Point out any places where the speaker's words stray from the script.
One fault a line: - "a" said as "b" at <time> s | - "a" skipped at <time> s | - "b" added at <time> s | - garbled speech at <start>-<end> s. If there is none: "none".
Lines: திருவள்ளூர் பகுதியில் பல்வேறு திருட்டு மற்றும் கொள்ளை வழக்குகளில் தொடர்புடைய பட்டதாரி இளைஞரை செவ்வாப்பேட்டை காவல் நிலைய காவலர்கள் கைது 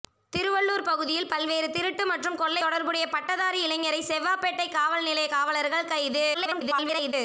- "வழக்குகளில்" skipped at 2.6 s
- garbled speech at 6.3-7.1 s